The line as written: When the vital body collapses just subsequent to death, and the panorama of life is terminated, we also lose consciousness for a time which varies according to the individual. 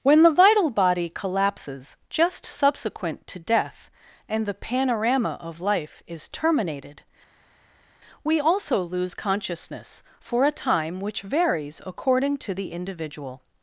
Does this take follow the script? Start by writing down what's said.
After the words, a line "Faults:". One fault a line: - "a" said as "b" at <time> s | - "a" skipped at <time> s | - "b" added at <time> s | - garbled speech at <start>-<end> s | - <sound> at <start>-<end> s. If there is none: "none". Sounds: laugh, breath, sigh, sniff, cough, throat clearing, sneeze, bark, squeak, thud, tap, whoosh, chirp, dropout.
When the vital body collapses just subsequent to death, and the panorama of life is terminated, we also lose consciousness for a time which varies according to the individual.
Faults:
none